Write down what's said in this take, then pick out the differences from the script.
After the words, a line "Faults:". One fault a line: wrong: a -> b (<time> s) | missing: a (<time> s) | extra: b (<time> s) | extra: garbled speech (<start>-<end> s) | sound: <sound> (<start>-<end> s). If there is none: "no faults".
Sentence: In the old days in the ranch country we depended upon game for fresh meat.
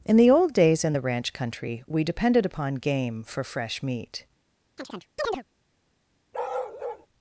In the old days in the ranch country we depended upon game for fresh meat.
Faults:
sound: chirp (4.8-5.4 s)
sound: bark (6.3-7.1 s)